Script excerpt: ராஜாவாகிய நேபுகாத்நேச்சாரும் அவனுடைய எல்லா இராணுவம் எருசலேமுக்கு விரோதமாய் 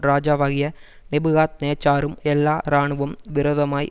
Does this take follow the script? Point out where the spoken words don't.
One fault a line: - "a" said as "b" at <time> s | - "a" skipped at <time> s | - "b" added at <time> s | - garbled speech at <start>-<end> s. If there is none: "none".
- "அவனுடைய" skipped at 2.2 s
- "எருசலேமுக்கு" skipped at 3.2 s